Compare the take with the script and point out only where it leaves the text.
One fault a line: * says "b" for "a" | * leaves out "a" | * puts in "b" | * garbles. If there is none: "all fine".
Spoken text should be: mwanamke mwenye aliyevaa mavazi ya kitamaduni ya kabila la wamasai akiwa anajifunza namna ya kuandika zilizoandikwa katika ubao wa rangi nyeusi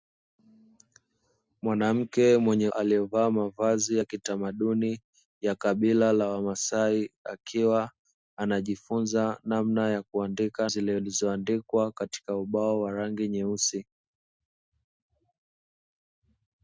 all fine